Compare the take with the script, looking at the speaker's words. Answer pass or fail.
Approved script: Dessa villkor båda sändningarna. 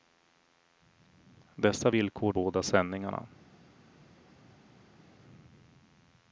pass